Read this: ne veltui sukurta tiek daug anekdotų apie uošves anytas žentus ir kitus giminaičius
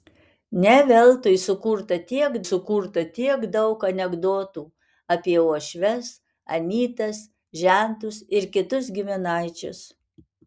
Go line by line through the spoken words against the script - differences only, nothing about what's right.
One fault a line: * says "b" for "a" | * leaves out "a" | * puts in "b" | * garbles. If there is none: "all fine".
* puts in "sukurta tiek"